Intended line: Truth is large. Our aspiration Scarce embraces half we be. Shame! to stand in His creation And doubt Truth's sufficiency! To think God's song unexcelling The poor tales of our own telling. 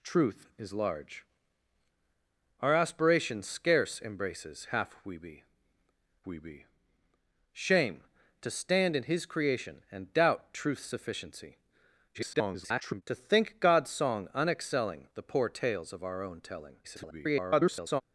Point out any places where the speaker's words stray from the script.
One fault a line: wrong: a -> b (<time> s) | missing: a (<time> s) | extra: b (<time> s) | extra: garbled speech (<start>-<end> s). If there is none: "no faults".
extra: we be (6.3 s)
extra: garbled speech (12.1-13.0 s)
extra: garbled speech (16.8-18.0 s)